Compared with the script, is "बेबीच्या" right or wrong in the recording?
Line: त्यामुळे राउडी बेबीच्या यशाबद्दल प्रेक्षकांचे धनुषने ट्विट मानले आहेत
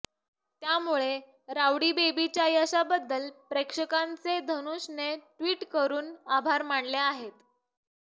right